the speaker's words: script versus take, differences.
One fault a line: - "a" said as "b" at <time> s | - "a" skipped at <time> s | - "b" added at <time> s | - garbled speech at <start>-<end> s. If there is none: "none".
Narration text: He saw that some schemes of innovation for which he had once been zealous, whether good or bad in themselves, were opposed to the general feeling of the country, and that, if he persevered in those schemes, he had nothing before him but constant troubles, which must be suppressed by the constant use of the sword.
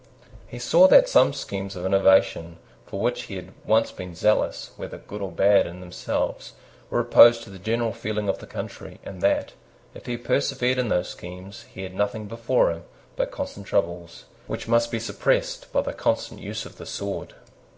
none